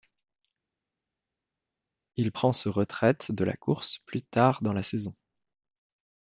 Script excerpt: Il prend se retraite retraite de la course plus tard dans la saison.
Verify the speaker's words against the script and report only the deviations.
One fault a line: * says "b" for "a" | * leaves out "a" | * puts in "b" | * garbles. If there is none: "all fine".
* leaves out "retraite"